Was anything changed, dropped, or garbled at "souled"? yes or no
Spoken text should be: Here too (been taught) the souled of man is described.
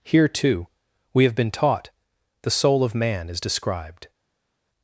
yes